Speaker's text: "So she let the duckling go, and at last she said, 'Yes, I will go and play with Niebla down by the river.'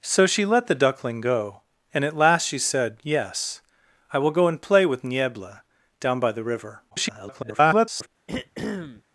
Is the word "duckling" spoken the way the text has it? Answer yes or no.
yes